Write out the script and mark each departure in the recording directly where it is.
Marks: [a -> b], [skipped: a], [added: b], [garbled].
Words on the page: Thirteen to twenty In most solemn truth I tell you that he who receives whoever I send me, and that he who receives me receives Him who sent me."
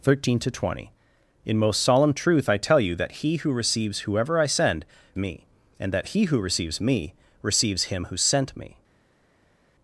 Thirteen to twenty In most solemn truth I tell you that he who receives whoever I send me, and that he who receives me receives Him who sent me."